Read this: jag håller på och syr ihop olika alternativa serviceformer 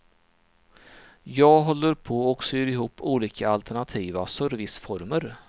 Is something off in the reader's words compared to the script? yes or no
no